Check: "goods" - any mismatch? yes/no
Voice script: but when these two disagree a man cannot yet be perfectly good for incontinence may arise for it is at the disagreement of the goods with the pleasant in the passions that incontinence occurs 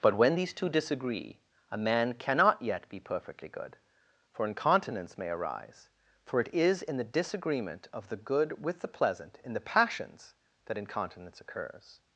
yes